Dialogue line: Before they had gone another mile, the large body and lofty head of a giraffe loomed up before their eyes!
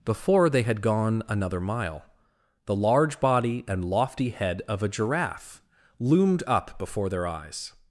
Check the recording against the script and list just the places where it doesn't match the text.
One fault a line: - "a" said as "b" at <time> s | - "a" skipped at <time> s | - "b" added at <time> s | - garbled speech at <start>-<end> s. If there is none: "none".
none